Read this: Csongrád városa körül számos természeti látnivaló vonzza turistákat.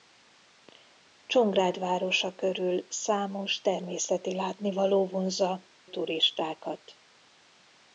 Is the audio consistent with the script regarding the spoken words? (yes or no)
yes